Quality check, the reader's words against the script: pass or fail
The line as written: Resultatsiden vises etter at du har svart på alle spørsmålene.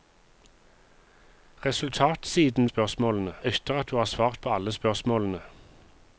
fail